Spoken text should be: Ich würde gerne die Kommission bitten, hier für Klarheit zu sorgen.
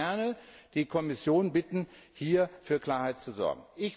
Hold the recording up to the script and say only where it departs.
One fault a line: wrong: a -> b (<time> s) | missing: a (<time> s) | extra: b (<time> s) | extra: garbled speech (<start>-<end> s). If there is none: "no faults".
no faults